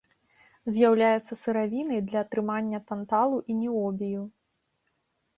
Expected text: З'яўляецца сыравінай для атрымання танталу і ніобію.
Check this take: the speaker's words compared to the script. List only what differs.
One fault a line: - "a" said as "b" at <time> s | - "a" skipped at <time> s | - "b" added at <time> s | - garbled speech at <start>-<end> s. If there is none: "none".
none